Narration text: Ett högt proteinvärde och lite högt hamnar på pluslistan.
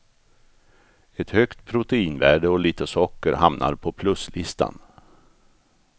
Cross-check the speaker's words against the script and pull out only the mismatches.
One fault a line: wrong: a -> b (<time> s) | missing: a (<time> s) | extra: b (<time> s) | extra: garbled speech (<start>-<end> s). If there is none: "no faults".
wrong: högt -> socker (2.9 s)